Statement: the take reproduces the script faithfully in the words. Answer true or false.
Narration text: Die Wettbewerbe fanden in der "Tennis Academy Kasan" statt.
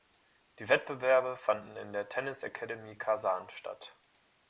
true